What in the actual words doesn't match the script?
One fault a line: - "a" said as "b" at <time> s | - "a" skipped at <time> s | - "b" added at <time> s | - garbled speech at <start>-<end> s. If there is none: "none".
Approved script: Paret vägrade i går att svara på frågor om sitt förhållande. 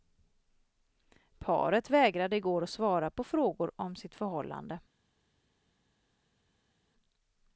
none